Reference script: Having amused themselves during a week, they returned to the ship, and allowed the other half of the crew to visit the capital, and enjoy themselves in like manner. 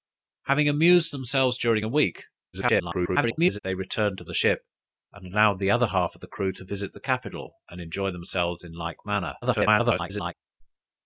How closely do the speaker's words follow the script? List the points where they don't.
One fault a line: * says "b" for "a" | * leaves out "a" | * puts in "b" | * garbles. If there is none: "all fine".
* garbles
* garbles